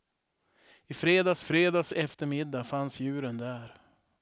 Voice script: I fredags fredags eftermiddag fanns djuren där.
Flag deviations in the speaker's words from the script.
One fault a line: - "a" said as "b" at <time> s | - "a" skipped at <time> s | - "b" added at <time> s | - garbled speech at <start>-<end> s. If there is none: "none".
none